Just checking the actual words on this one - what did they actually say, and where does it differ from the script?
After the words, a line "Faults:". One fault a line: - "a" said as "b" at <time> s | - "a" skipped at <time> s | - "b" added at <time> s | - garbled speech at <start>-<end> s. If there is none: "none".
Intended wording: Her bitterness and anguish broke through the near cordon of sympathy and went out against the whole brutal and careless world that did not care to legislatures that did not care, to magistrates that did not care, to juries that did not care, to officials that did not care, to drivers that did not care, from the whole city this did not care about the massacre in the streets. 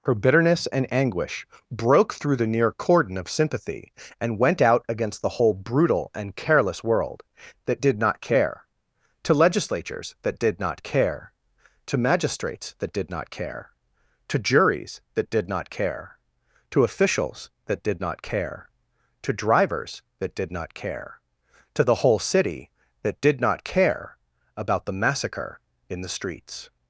Her bitterness and anguish broke through the near cordon of sympathy and went out against the whole brutal and careless world that did not care to legislatures that did not care, to magistrates that did not care, to juries that did not care, to officials that did not care, to drivers that did not care, to the whole city that did not care about the massacre in the streets.
Faults:
- "from" said as "to" at 21.7 s
- "this" said as "that" at 23.0 s